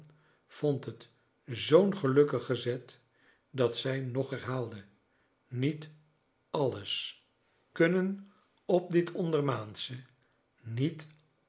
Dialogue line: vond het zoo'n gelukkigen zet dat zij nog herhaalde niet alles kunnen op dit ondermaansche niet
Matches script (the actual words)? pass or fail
pass